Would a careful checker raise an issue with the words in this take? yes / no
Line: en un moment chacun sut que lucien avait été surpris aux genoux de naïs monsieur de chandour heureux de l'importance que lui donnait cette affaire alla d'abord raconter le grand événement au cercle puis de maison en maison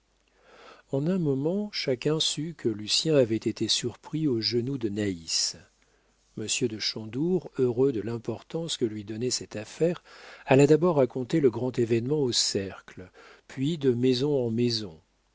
no